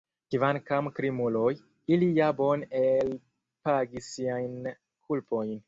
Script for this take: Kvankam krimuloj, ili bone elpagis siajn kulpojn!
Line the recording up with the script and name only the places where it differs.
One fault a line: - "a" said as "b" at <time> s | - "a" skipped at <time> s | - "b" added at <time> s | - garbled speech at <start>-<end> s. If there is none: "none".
- "ja" added at 2.2 s